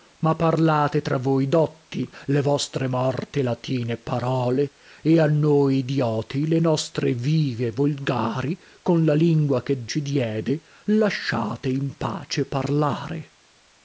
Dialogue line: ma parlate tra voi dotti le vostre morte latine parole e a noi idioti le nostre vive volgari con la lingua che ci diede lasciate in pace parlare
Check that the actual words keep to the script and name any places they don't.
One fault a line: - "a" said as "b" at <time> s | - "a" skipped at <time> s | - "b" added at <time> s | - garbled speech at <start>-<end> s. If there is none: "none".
none